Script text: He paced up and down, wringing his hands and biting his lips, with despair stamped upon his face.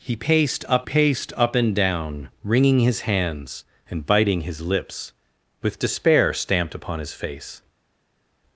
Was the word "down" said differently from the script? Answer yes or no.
no